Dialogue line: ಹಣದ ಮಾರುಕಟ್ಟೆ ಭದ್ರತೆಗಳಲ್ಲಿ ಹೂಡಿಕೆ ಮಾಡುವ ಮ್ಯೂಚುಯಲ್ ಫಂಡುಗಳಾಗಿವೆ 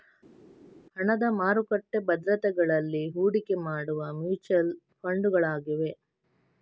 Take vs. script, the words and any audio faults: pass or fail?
pass